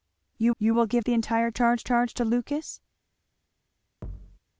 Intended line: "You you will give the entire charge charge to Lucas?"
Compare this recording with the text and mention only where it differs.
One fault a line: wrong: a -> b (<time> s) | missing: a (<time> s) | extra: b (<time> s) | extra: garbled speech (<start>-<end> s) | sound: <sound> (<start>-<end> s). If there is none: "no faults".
sound: thud (4.0-4.4 s)